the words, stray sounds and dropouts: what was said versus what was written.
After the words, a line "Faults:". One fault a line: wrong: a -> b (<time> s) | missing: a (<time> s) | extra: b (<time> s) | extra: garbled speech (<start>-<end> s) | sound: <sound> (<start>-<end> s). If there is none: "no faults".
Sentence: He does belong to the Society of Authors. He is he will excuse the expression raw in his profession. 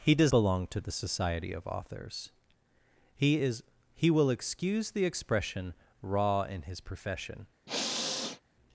He does belong to the Society of Authors. He is he will excuse the expression raw in his profession.
Faults:
sound: sniff (7.7-8.4 s)